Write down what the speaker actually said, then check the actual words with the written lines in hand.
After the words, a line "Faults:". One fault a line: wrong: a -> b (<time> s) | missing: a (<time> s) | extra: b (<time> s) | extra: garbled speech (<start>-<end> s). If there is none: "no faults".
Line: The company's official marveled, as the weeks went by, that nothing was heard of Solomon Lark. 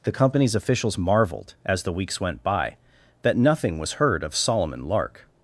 The company's officials marveled, as the weeks went by, that nothing was heard of Solomon Lark.
Faults:
wrong: official -> officials (0.6 s)